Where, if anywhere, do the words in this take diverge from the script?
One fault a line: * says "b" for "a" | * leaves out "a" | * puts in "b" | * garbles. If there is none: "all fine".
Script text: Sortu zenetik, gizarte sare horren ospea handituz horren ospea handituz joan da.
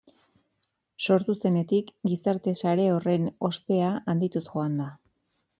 * leaves out "horren ospea handituz"